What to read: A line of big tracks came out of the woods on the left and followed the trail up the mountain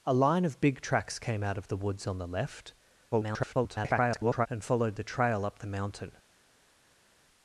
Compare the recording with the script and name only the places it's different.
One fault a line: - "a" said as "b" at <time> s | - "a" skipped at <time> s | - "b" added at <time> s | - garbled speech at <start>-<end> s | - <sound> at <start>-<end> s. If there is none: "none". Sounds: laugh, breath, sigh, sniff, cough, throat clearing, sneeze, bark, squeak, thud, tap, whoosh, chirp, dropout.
- garbled speech at 3.1-4.5 s